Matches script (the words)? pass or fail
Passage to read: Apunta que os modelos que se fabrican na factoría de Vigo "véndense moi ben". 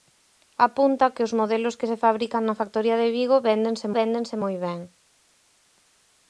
fail